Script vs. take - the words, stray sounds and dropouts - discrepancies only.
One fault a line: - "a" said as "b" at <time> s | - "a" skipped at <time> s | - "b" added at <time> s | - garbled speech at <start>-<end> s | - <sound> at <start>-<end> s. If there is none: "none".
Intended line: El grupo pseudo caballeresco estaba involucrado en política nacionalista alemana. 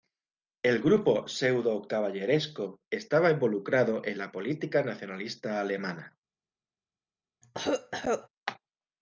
- "la" added at 4.2 s
- cough at 7.4-8.3 s